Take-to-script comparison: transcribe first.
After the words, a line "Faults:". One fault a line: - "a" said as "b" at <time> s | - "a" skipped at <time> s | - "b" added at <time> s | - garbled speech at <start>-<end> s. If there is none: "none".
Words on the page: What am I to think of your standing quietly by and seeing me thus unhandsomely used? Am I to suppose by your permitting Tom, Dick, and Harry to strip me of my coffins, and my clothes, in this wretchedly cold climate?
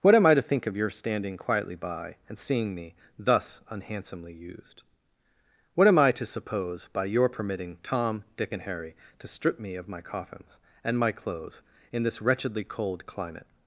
What am I to think of your standing quietly by and seeing me thus unhandsomely used? What am I to suppose by your permitting Tom, Dick, and Harry to strip me of my coffins, and my clothes, in this wretchedly cold climate?
Faults:
- "What" added at 5.8 s